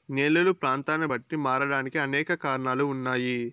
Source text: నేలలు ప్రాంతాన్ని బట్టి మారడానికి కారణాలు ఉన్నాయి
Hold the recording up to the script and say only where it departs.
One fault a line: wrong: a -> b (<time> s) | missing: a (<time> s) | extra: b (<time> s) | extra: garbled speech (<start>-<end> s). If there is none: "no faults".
extra: అనేక (2.0 s)